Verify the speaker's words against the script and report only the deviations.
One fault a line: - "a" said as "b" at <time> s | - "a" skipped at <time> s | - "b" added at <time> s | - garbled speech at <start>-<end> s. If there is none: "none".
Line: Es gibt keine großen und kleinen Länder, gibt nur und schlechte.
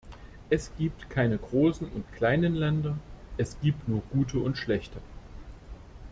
- "es" added at 3.4 s
- "gute" added at 4.1 s